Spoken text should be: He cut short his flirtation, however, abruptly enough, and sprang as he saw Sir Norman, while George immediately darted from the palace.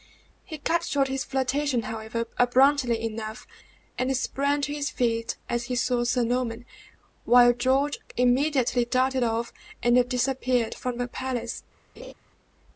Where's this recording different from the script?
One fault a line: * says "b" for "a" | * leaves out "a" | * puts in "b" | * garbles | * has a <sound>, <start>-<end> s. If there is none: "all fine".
* puts in "to his feet"
* puts in "off and disappeared"
* has a laugh, 12.0-12.1 s